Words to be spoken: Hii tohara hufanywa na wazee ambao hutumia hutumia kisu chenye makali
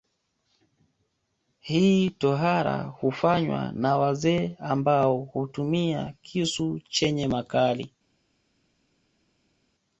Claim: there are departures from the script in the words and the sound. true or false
true